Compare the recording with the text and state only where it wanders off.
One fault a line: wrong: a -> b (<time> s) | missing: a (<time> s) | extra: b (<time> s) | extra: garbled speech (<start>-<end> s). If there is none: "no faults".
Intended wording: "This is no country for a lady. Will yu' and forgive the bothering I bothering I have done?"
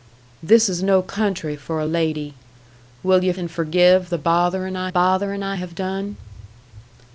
no faults